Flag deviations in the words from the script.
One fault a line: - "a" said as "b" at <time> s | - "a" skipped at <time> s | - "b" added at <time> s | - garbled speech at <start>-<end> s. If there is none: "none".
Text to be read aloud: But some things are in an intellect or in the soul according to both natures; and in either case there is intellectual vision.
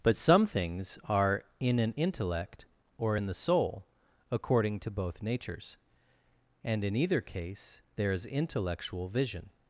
none